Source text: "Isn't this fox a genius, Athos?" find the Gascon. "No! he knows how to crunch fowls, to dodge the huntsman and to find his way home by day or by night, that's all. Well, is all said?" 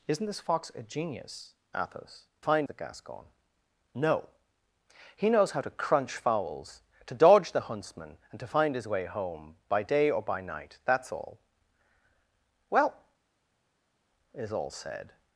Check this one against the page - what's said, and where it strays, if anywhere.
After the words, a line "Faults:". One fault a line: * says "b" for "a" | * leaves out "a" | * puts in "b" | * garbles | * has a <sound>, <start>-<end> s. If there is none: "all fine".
"Isn't this fox a genius, Athos?" find the Gascon. "No! he knows how to crunch fowls, to dodge the huntsman and to find his way home by day or by night, that's all. Well, is all said?"
Faults:
all fine